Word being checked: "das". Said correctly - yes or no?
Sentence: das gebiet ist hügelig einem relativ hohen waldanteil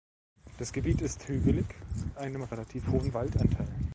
yes